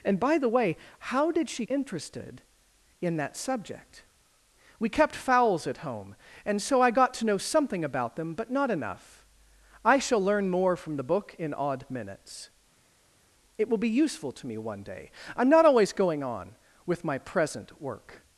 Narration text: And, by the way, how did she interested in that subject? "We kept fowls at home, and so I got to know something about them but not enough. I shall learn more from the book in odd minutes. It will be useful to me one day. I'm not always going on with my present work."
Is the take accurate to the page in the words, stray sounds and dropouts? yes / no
yes